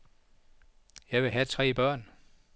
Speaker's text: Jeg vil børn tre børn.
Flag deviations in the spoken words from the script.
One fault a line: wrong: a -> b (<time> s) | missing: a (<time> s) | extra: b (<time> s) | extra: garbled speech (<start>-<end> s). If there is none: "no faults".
wrong: børn -> have (1.3 s)